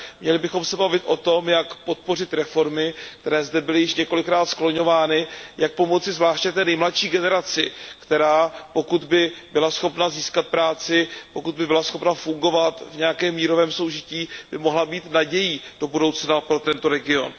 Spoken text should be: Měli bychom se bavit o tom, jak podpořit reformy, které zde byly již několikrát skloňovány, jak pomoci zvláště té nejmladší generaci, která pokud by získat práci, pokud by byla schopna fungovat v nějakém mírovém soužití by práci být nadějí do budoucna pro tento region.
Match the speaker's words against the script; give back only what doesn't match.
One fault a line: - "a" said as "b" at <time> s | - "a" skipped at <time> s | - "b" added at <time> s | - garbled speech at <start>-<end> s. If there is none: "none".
- "byla schopna" added at 9.5 s
- "práci" said as "mohla" at 14.6 s